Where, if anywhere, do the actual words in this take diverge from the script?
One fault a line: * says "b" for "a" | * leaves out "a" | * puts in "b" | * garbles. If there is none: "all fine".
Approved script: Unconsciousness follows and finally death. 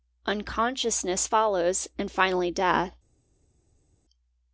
all fine